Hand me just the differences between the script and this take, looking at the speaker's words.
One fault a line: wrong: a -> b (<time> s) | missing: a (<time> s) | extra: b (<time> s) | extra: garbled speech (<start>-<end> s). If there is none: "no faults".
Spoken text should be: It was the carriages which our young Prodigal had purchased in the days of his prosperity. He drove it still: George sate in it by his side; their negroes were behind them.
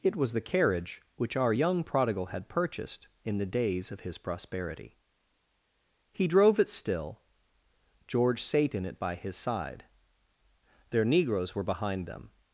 wrong: carriages -> carriage (0.4 s)